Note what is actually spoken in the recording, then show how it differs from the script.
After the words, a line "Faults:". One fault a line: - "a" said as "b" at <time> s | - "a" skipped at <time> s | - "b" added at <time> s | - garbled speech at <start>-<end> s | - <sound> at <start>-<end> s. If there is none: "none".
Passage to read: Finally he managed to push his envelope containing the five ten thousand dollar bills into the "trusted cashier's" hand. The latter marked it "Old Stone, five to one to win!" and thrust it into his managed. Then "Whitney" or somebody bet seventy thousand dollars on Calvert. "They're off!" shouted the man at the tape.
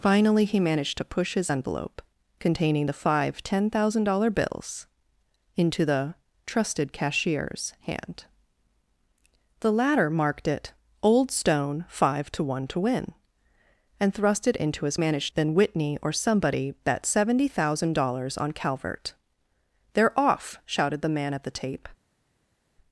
Finally he managed to push his envelope containing the five ten thousand dollar bills into the "trusted cashier's" hand. The latter marked it "Old Stone, five to one to win!" and thrust it into his managed. Then "Whitney" or somebody bet seventy thousand dollars on Calvert. "They're off!" shouted the man at the tape.
Faults:
none